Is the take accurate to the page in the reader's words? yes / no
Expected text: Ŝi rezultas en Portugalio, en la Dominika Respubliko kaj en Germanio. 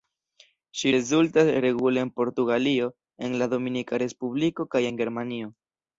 no